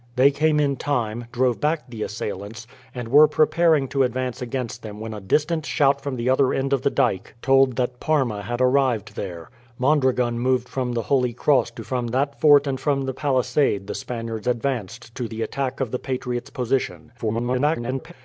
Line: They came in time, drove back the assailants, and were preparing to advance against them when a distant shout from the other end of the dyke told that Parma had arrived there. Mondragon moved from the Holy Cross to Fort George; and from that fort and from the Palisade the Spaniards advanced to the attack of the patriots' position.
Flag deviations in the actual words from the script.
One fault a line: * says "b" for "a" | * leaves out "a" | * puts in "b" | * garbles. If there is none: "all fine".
* leaves out "Fort George and"
* garbles